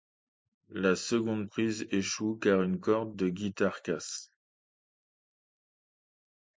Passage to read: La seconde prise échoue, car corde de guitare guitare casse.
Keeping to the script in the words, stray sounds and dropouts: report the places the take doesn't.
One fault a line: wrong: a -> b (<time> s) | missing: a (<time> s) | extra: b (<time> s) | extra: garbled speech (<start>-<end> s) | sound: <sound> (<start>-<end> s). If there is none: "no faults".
extra: une (2.6 s)
missing: guitare (3.8 s)